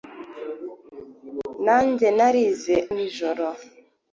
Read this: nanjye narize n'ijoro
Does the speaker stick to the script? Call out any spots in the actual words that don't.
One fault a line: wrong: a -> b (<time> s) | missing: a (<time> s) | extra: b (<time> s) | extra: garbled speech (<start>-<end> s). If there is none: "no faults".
no faults